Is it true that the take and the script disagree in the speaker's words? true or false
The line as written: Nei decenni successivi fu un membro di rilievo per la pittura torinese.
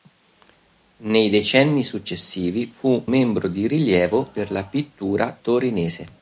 true